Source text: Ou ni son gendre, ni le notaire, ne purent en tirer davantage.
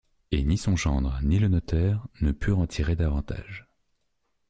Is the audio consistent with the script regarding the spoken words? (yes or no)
no